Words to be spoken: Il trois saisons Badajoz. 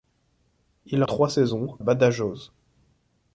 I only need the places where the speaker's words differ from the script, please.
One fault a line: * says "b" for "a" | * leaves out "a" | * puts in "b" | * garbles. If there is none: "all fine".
all fine